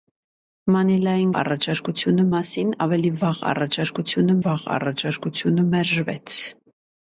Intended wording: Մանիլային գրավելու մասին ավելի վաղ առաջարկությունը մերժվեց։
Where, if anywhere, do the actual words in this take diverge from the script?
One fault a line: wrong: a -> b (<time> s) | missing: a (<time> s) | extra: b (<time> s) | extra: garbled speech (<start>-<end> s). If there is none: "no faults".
wrong: գրավելու -> առաջարկությունը (1.4 s)
extra: վաղ առաջարկությունը (4.4 s)